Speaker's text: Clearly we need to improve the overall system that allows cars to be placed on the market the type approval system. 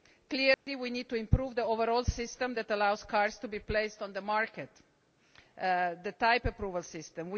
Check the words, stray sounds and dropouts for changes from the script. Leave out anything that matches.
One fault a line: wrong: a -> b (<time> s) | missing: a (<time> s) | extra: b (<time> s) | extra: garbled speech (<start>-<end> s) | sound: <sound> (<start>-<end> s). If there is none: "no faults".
sound: dropout (0.5-0.7 s)